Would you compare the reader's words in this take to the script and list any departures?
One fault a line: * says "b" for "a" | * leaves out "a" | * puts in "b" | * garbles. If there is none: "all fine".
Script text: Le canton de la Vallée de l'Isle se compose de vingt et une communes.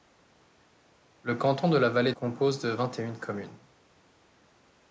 * leaves out "de l'Isle se"